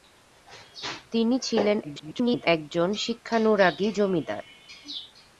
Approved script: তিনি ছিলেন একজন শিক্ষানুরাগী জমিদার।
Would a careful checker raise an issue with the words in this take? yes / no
yes